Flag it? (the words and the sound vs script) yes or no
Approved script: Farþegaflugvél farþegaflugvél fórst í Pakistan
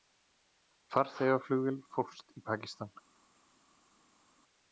yes